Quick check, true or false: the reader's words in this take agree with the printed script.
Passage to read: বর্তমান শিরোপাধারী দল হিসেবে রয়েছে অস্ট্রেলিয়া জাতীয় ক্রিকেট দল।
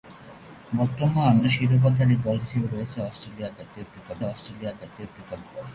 false